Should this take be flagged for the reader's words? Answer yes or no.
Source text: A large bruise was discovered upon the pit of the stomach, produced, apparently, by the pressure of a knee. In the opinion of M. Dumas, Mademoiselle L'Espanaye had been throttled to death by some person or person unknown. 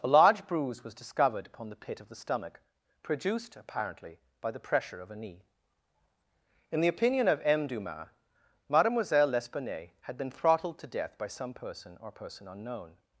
no